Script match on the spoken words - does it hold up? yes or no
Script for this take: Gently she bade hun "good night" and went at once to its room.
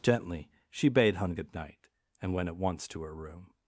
no